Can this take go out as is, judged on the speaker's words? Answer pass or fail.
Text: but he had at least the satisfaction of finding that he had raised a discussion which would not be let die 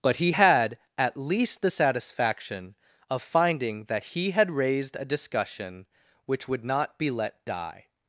pass